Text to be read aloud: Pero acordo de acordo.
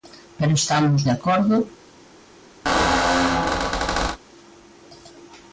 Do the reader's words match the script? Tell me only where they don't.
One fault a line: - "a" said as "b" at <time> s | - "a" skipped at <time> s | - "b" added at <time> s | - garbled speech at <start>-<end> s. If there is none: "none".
- "acordo" said as "estamos" at 0.6 s